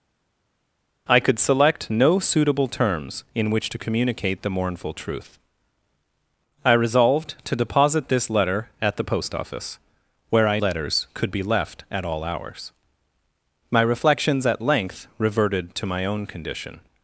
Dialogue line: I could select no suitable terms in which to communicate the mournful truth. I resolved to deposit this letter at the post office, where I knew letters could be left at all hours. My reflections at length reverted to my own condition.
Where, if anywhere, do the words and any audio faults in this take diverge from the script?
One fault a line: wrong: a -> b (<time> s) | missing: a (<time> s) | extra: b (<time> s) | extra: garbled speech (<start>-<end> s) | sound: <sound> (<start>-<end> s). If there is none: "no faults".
missing: knew (10.6 s)